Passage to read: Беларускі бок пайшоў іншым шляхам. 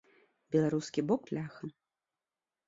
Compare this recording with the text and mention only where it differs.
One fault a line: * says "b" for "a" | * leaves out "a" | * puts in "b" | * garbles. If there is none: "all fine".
* leaves out "пайшоў іншым"